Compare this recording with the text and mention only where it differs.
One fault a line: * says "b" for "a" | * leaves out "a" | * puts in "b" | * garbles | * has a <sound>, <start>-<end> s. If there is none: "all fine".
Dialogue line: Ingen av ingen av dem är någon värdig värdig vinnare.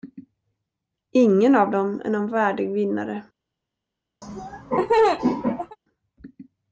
* leaves out "ingen av"
* leaves out "värdig"
* has a laugh, 4.2-5.8 s